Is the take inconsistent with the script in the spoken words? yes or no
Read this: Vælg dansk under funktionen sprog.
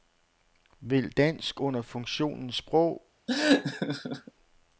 no